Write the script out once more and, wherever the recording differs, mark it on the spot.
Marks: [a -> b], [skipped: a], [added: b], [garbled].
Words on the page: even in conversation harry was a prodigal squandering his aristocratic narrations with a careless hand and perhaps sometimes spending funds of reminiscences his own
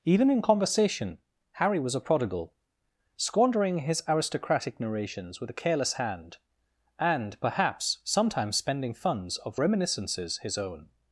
even in conversation harry was a prodigal squandering his aristocratic narrations with a careless hand and perhaps sometimes spending funds of reminiscences his own